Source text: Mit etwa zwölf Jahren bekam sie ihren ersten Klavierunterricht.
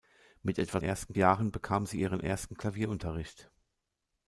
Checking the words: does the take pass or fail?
fail